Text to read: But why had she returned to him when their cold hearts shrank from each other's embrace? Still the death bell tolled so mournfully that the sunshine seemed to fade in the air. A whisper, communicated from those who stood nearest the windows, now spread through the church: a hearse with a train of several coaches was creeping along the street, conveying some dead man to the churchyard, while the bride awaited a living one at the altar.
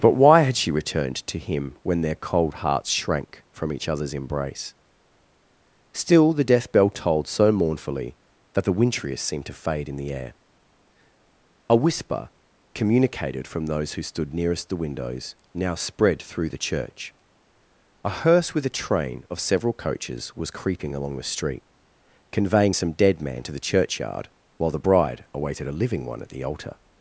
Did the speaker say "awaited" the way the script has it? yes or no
yes